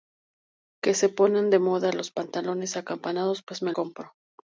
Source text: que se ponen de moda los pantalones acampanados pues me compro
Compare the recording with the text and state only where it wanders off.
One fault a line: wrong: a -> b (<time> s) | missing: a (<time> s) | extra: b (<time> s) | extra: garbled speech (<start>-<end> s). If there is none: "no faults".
no faults